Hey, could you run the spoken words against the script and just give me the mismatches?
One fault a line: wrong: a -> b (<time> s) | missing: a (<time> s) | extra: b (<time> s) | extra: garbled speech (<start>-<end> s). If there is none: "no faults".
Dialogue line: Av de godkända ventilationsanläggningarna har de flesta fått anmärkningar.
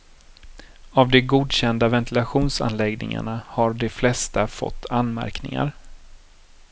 no faults